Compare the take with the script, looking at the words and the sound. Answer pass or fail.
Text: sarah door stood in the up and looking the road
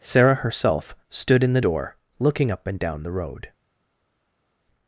fail